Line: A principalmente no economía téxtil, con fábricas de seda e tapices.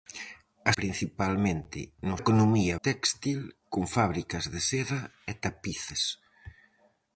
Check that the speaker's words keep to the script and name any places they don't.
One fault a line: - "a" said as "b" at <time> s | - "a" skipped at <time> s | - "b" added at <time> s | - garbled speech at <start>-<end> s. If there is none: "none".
none